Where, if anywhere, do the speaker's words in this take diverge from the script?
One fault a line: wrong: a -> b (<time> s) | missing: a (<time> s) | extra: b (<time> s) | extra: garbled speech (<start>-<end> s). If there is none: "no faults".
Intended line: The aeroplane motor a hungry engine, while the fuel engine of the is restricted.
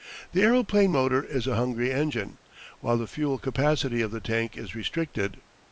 extra: is (1.2 s)
wrong: engine -> capacity (3.4 s)
extra: tank (4.2 s)